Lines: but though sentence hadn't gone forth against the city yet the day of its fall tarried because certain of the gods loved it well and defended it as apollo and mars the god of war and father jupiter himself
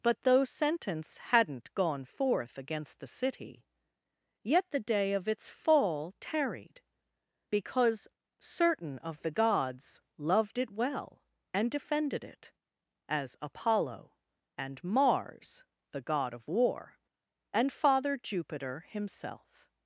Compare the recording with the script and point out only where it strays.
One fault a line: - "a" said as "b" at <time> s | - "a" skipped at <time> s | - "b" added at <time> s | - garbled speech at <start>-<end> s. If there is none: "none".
none